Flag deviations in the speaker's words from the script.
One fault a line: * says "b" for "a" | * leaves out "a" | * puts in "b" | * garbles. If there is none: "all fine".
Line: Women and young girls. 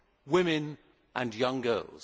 all fine